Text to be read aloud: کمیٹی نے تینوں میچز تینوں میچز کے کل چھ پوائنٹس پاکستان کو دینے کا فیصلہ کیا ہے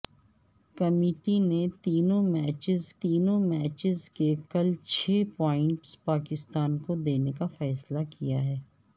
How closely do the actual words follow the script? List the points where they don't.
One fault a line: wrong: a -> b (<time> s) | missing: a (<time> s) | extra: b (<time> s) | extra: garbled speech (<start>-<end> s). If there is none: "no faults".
no faults